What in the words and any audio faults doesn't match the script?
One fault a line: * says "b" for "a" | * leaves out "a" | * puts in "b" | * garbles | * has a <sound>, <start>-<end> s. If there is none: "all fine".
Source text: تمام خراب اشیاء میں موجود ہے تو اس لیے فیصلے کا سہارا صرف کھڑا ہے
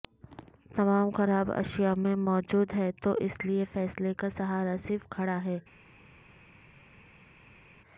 all fine